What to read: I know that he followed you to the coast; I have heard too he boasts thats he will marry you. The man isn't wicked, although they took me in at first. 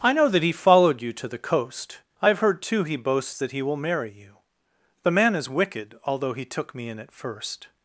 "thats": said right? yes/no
no